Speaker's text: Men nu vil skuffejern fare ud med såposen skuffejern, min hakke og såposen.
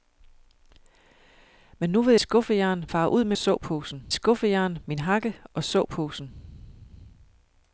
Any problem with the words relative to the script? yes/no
no